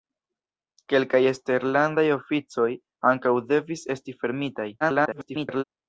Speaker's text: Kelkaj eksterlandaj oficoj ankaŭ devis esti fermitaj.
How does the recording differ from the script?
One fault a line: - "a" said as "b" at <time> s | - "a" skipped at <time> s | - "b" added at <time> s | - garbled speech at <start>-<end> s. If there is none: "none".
- garbled speech at 4.8-5.6 s